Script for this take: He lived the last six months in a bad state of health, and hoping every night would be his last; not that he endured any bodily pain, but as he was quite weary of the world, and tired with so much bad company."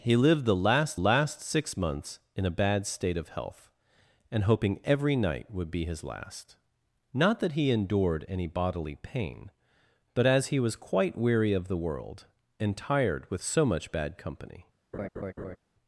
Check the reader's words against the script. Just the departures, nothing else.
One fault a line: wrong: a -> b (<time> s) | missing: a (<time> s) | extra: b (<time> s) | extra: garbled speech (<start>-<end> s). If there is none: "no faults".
extra: last (0.9 s)